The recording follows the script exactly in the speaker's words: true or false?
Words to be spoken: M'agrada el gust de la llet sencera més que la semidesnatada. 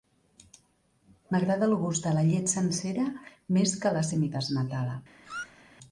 true